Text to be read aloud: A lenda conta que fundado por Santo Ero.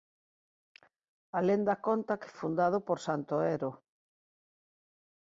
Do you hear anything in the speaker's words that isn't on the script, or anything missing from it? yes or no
no